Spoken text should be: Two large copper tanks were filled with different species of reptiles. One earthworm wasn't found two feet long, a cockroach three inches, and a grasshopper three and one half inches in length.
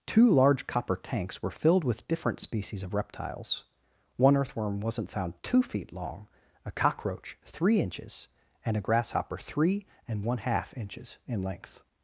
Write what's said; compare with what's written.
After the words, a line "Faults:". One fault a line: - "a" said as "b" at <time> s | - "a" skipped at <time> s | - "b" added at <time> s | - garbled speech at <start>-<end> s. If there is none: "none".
Two large copper tanks were filled with different species of reptiles. One earthworm wasn't found two feet long, a cockroach three inches, and a grasshopper three and one half inches in length.
Faults:
none